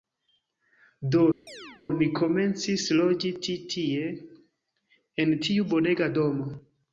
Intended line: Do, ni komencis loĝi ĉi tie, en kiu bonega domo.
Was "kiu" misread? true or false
true